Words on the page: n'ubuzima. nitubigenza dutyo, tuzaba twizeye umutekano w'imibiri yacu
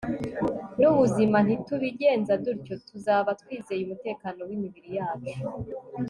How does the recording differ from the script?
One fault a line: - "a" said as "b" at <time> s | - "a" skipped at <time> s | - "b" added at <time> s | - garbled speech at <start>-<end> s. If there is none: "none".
none